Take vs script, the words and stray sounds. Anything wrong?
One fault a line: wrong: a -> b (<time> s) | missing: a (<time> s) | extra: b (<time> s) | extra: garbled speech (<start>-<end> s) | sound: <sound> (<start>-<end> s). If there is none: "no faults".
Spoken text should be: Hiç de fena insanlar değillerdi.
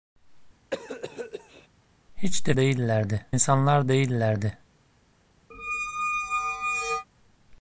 sound: cough (0.7-1.7 s)
wrong: fena -> değillerdi (2.6 s)
sound: squeak (5.5-7.1 s)